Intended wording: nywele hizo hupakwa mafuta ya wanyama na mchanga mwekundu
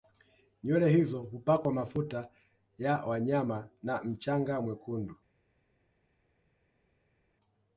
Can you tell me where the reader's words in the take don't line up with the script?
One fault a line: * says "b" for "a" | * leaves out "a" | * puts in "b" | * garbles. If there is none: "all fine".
all fine